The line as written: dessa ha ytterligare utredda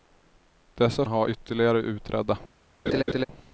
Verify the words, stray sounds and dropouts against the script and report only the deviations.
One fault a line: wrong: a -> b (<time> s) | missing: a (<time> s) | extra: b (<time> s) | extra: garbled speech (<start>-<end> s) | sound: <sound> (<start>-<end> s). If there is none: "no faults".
sound: laugh (2.9-3.2 s)